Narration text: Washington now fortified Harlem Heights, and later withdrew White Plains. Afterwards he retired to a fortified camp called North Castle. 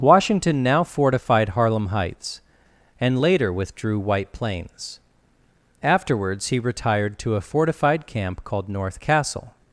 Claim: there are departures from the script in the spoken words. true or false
false